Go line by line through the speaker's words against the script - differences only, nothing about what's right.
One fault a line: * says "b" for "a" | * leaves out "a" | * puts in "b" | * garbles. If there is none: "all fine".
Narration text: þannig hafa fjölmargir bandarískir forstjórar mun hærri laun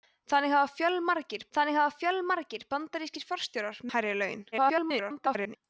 * puts in "þannig hafa fjölmargir"
* leaves out "mun"
* garbles